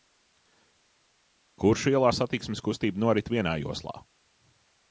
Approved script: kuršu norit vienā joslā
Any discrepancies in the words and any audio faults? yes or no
yes